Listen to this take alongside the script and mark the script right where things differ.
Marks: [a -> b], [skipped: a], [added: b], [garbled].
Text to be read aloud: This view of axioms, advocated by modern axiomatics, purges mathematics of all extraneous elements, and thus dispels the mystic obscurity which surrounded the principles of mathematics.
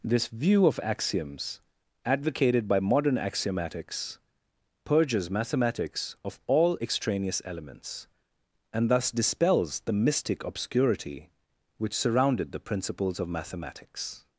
This view of axioms, advocated by modern axiomatics, purges mathematics of all extraneous elements, and thus dispels the mystic obscurity which surrounded the principles of mathematics.